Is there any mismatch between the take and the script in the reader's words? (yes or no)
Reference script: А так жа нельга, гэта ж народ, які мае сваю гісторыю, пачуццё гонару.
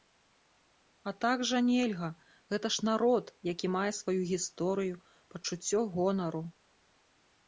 no